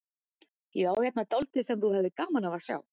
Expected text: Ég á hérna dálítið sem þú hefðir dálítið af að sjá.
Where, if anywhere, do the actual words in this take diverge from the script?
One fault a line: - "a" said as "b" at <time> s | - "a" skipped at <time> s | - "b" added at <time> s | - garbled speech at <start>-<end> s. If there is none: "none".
- "dálítið" said as "gaman" at 2.2 s